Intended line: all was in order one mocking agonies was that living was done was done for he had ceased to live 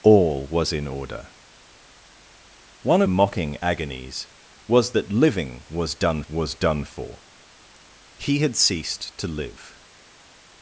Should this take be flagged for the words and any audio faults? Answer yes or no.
no